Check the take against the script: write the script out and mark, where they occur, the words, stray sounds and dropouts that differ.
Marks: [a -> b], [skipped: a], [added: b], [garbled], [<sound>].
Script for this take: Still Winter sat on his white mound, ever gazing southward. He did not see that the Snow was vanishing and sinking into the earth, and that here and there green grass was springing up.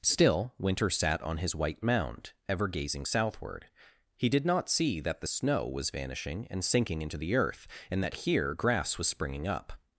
Still Winter sat on his white mound, ever gazing southward. He did not see that the Snow was vanishing and sinking into the earth, and that here [skipped: and there green] grass was springing up.